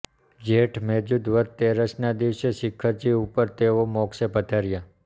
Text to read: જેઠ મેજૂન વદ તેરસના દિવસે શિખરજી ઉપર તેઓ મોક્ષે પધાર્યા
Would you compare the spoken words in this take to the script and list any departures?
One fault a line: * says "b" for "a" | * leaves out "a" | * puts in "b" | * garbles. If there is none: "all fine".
all fine